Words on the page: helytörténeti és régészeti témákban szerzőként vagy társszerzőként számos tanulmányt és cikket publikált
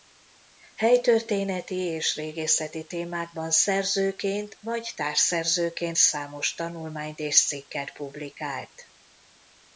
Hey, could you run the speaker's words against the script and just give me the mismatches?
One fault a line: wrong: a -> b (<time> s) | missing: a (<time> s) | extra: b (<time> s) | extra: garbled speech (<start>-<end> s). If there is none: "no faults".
no faults